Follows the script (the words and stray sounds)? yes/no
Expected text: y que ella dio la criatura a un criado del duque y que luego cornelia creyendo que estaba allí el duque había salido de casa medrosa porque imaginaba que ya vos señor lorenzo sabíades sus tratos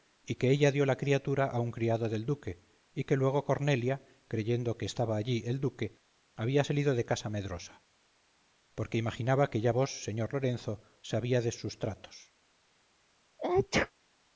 no